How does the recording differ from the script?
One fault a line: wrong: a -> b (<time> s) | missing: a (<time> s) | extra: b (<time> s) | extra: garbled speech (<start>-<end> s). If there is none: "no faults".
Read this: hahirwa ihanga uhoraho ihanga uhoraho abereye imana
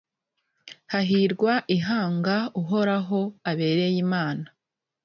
missing: ihanga uhoraho (3.2 s)